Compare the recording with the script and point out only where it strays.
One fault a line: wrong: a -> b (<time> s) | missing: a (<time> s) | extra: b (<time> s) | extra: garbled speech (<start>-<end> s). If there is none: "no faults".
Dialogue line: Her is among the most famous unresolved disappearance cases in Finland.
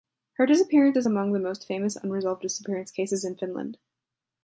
extra: disappearance (0.5 s)